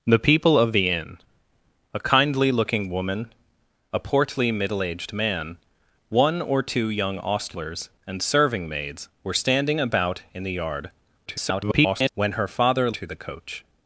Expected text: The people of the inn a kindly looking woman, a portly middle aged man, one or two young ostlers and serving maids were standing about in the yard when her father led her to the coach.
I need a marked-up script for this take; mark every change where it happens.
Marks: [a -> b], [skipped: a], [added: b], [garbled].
The people of the inn a kindly looking woman, a portly middle aged man, one or two young ostlers and serving maids were standing about in the yard [garbled] when her father [skipped: led her] to the coach.